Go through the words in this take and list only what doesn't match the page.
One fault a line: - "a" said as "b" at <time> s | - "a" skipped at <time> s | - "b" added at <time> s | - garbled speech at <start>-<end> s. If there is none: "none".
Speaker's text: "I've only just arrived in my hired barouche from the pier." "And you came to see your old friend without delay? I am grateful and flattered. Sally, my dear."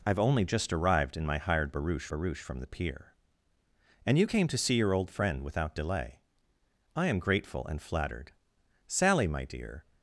- "barouche" added at 2.1 s